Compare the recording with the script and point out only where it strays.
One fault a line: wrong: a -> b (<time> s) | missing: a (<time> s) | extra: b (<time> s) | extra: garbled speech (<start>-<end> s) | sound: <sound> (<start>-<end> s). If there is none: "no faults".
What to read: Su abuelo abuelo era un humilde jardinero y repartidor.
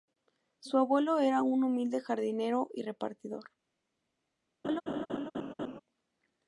missing: abuelo (1.2 s)
sound: laugh (4.6-5.8 s)